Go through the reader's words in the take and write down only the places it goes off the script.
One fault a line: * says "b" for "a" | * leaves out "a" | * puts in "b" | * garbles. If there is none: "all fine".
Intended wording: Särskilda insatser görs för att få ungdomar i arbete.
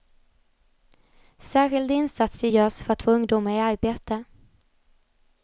all fine